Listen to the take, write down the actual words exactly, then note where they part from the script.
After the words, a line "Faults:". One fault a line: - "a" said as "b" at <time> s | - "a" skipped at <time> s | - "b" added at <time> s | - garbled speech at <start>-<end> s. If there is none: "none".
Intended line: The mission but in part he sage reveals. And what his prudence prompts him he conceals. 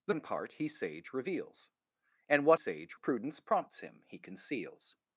The in part he sage reveals. And what sage prudence prompts him he conceals.
Faults:
- "mission but" skipped at 0.1 s
- "his" said as "sage" at 2.5 s